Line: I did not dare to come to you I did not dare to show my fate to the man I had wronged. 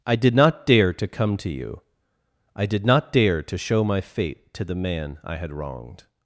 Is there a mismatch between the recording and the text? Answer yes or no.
no